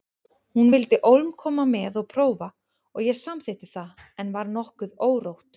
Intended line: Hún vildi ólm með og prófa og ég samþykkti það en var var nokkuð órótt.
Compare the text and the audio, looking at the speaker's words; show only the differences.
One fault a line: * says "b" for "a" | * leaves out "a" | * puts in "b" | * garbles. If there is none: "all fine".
* puts in "koma"
* leaves out "var"